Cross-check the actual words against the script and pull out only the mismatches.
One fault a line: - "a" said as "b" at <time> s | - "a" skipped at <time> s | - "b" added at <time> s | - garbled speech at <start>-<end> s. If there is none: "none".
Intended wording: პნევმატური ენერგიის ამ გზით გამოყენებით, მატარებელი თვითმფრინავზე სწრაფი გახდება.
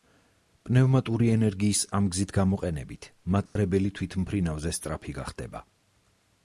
none